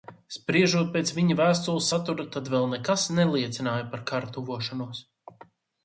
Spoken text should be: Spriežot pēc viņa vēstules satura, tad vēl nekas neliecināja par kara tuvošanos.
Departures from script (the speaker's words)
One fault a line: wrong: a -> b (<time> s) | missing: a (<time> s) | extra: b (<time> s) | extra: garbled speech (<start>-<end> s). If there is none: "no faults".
no faults